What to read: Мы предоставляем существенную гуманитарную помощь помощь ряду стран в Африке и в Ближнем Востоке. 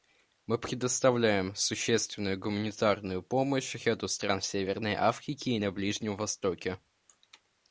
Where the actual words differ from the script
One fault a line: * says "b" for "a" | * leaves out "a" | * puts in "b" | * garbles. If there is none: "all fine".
* leaves out "помощь"
* puts in "Северной"
* says "на" for "в"